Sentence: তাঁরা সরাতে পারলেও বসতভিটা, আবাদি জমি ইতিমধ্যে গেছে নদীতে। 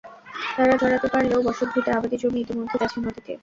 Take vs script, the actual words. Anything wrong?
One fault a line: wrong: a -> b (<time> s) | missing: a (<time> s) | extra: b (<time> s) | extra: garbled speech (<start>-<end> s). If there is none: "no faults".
no faults